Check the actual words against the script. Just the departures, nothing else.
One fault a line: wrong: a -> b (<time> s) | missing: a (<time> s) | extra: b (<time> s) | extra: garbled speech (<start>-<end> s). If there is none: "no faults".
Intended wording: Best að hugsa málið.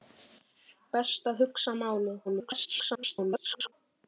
extra: garbled speech (2.2-3.7 s)